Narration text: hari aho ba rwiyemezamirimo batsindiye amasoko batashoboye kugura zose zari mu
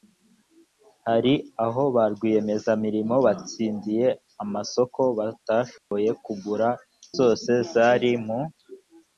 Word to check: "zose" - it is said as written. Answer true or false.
true